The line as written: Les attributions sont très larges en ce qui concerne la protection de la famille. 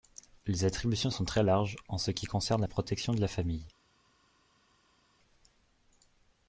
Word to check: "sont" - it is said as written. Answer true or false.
true